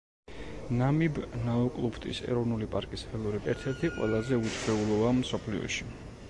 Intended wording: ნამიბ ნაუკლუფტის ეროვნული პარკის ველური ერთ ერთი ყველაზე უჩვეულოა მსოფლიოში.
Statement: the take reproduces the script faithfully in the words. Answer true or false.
true